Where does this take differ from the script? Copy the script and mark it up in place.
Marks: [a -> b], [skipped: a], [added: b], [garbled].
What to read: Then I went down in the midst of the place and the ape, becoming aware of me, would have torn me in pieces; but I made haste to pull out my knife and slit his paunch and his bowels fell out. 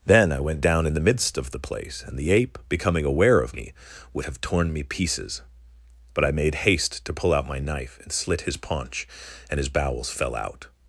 Then I went down in the midst of the place and the ape, becoming aware of me, would have torn me [skipped: in] pieces; but I made haste to pull out my knife and slit his paunch and his bowels fell out.